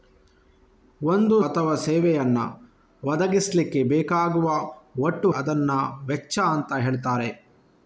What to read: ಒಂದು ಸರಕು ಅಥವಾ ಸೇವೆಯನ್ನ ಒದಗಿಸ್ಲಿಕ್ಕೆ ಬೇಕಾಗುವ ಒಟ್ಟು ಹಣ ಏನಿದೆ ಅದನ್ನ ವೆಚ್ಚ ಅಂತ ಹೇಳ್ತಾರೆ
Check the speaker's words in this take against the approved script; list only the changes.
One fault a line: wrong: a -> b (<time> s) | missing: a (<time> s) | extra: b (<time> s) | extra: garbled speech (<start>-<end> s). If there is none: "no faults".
missing: ಸರಕು (1.4 s)
missing: ಹಣ ಏನಿದೆ (5.3 s)